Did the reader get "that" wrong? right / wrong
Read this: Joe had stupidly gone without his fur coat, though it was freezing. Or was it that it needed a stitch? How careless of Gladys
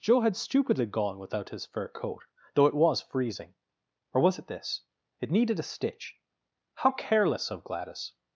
wrong